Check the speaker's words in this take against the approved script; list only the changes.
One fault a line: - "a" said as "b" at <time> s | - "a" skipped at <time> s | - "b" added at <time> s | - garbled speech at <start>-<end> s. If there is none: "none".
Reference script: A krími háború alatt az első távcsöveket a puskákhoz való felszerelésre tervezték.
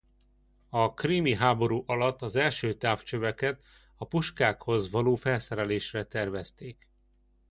none